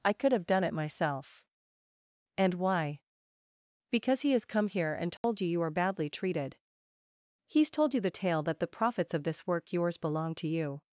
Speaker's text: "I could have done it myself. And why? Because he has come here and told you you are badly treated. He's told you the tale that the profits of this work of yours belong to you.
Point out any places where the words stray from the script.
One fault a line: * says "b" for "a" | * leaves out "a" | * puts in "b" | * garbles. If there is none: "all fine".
* leaves out "of"